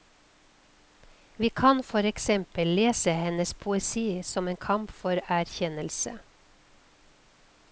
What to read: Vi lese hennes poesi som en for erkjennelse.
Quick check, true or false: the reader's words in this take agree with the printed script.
false